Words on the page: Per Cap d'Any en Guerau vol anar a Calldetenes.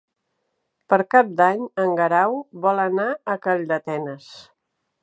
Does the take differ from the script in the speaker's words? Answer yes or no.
no